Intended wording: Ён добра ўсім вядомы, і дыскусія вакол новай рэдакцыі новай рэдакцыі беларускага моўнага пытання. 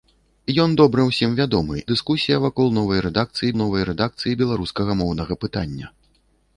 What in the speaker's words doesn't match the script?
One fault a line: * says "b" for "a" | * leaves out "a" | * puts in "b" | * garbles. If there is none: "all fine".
all fine